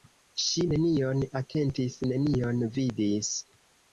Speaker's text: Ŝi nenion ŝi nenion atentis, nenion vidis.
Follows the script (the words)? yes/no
no